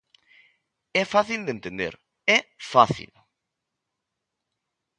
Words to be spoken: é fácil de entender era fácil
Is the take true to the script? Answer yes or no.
no